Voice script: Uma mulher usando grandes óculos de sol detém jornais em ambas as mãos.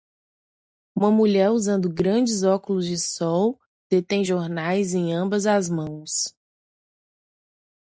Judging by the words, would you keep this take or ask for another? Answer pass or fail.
pass